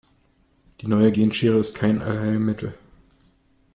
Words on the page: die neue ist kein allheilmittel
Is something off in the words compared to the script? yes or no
yes